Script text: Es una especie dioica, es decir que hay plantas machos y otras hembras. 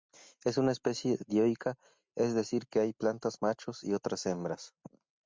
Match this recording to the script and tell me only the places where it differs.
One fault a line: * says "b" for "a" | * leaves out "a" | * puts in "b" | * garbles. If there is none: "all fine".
all fine